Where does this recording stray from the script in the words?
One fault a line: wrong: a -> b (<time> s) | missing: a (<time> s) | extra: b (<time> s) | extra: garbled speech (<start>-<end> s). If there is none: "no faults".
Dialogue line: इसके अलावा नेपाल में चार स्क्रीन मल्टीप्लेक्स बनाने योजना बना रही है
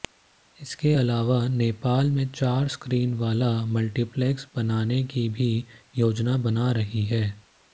extra: वाला (3.1 s)
extra: की भी (5.0 s)